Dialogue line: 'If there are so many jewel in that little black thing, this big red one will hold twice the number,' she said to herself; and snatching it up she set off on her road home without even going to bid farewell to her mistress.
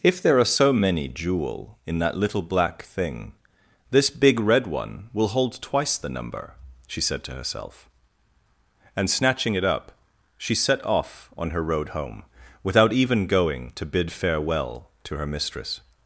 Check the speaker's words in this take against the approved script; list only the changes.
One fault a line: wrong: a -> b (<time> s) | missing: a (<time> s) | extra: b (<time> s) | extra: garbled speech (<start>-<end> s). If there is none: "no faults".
no faults